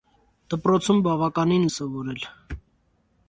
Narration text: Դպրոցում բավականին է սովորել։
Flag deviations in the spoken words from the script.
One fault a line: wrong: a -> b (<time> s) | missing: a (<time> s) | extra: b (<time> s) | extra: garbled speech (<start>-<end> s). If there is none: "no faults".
no faults